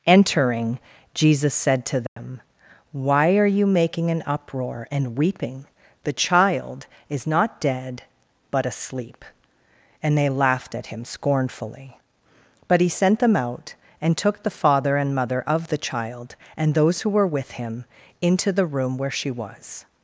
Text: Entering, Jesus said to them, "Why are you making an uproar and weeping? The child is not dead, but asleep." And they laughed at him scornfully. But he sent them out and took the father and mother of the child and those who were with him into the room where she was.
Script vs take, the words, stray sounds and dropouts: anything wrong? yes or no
yes